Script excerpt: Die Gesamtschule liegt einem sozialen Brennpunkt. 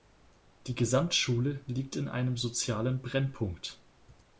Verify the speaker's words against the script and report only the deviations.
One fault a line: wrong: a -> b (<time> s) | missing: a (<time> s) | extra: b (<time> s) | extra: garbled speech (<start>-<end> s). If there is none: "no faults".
extra: in (1.9 s)